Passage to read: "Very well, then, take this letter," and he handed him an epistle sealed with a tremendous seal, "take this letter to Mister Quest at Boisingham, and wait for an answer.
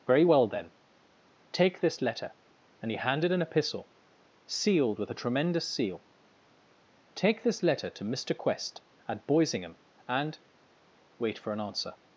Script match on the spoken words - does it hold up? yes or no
no